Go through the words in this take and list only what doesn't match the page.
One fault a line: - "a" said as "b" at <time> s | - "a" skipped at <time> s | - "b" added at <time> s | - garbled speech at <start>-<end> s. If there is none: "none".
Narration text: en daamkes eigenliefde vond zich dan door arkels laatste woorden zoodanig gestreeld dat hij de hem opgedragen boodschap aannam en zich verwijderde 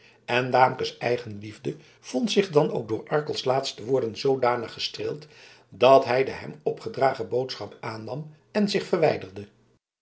- "ook" added at 2.7 s